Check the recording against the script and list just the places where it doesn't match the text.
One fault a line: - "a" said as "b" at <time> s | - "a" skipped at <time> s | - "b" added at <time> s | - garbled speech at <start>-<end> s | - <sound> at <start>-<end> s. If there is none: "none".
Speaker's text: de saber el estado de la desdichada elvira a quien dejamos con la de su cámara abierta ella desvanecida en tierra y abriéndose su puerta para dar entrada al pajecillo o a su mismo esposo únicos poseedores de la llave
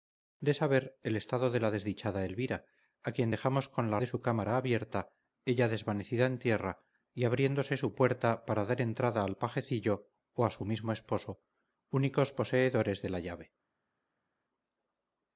none